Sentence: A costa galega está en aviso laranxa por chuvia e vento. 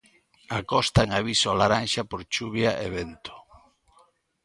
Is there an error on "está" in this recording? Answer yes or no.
yes